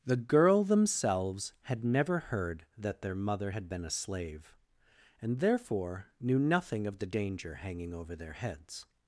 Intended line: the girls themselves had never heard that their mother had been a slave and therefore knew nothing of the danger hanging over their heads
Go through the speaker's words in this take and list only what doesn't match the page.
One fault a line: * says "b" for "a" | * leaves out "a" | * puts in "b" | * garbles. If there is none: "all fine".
* says "girl" for "girls"